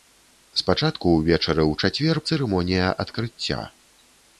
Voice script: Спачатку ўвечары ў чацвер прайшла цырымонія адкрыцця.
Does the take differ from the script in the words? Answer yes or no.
yes